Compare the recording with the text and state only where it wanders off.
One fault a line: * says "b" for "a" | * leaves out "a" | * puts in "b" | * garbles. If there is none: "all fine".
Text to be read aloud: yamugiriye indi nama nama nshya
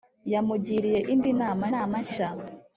all fine